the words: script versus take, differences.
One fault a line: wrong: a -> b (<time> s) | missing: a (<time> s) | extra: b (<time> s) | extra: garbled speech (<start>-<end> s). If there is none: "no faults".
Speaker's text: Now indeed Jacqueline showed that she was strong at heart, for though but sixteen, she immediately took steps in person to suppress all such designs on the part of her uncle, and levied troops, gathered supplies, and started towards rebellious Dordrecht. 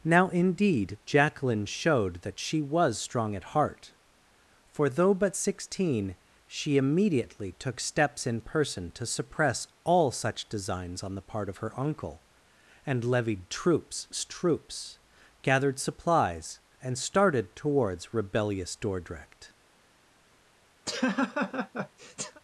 extra: troops (14.3 s)